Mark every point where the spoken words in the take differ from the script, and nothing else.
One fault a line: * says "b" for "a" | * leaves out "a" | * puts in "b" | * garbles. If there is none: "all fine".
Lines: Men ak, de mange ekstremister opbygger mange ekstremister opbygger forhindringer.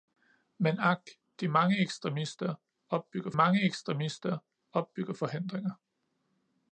all fine